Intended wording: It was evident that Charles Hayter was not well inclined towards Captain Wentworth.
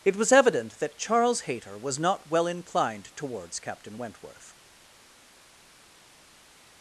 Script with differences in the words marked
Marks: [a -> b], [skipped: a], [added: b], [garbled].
It was evident that Charles Hayter was not well inclined towards Captain Wentworth.